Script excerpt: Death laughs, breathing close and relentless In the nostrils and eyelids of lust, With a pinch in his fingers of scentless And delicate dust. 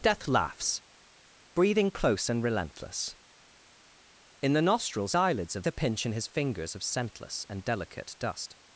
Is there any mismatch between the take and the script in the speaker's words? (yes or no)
yes